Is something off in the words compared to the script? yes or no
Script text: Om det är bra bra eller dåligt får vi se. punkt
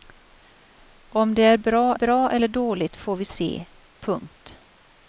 no